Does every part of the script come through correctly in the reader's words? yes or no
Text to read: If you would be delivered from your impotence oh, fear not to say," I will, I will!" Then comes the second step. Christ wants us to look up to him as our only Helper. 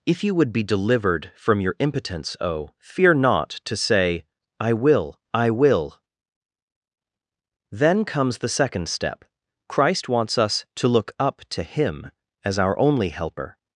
yes